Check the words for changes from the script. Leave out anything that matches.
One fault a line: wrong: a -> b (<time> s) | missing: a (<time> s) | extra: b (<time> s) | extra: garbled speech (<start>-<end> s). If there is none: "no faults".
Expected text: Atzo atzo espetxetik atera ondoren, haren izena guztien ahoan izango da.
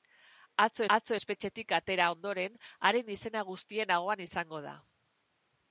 no faults